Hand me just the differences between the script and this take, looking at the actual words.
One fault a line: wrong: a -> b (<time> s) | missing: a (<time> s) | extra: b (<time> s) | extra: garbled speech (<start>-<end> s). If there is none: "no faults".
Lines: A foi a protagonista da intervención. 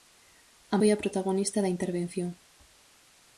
no faults